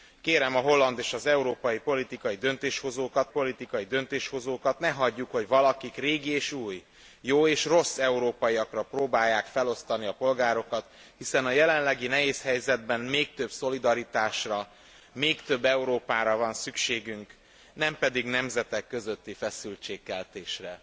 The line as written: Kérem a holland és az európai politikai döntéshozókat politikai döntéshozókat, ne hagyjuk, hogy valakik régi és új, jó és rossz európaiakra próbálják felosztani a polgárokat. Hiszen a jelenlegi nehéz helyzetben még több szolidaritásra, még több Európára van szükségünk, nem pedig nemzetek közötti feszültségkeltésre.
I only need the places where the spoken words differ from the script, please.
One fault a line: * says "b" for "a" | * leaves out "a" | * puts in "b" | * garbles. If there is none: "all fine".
all fine